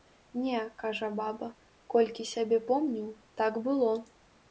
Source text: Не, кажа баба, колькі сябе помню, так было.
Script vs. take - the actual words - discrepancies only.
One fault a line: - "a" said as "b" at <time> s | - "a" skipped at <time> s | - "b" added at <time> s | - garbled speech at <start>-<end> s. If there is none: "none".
none